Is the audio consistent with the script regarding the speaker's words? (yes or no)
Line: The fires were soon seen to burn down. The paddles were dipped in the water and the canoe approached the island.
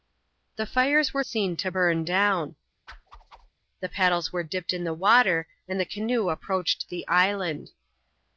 no